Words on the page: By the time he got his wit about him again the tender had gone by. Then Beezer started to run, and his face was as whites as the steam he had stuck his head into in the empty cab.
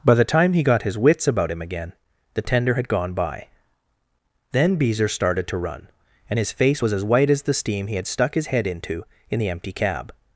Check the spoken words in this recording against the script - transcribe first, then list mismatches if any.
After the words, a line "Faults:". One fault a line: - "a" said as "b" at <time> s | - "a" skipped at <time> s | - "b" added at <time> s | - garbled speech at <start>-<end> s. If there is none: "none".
By the time he got his wits about him again the tender had gone by. Then Beezer started to run, and his face was as white as the steam he had stuck his head into in the empty cab.
Faults:
- "wit" said as "wits" at 1.0 s
- "whites" said as "white" at 7.0 s